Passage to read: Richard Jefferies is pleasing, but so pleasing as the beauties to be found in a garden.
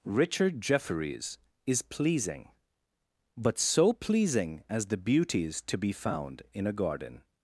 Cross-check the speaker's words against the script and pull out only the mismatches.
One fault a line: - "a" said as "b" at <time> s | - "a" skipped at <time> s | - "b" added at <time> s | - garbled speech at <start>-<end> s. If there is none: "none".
none